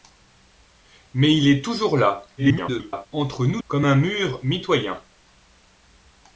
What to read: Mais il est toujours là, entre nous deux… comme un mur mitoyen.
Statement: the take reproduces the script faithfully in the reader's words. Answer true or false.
false